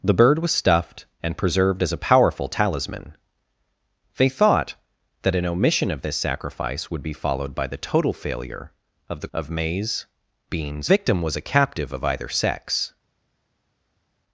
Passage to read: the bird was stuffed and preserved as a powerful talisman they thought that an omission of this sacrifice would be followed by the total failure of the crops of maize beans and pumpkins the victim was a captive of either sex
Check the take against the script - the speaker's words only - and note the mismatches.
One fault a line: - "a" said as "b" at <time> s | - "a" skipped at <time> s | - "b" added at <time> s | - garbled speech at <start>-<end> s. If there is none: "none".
- "crops" skipped at 9.3 s
- "and pumpkins the" skipped at 10.9 s